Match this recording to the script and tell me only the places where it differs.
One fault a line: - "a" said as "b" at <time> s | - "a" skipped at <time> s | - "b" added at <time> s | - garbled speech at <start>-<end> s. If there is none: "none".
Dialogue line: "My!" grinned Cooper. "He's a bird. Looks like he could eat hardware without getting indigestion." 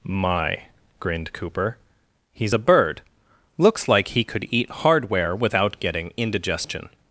none